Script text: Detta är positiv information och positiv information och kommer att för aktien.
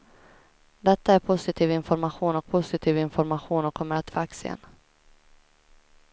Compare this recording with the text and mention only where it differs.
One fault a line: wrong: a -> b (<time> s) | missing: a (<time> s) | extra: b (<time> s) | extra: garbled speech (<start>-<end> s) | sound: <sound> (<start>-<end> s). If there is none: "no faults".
no faults